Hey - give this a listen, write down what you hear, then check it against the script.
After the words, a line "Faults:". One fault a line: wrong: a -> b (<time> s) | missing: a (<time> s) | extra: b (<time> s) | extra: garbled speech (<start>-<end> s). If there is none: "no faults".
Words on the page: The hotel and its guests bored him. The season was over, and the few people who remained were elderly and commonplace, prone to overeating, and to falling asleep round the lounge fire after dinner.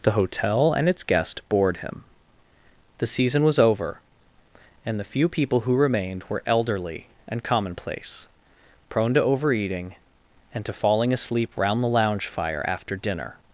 The hotel and its guest bored him. The season was over, and the few people who remained were elderly and commonplace, prone to overeating, and to falling asleep round the lounge fire after dinner.
Faults:
wrong: guests -> guest (1.0 s)